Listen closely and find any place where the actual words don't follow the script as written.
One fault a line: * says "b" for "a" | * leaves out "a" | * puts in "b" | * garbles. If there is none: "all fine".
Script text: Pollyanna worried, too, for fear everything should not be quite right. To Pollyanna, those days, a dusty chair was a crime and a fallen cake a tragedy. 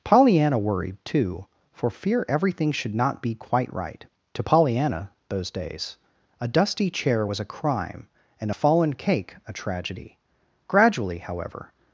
* puts in "Gradually however"